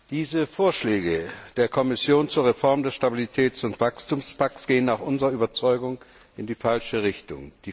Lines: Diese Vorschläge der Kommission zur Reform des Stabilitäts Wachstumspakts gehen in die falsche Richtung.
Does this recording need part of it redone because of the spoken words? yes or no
yes